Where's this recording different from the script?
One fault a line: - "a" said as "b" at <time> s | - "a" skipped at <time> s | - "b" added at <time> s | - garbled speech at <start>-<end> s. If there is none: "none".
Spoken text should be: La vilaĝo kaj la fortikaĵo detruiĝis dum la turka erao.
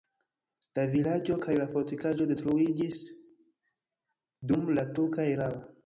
none